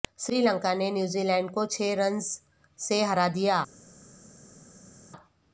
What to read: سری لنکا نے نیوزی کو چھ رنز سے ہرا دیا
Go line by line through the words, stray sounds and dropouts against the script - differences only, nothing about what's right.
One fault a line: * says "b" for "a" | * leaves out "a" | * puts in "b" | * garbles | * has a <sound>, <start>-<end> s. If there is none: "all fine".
* puts in "لینڈ"